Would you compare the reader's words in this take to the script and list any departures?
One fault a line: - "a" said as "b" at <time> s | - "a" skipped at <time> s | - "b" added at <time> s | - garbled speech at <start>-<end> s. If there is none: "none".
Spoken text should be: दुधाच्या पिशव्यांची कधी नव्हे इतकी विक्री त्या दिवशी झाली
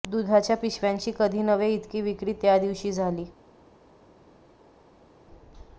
none